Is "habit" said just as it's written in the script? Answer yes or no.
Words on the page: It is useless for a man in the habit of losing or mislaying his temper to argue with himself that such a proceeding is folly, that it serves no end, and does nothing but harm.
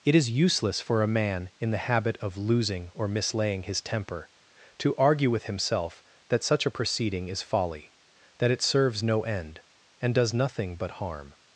yes